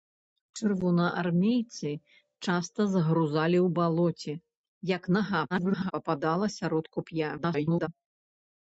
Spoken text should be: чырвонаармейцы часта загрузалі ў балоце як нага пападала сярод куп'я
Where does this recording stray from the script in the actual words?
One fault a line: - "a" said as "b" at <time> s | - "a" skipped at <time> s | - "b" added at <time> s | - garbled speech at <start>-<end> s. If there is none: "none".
- garbled speech at 5.5-5.9 s
- garbled speech at 7.4-7.9 s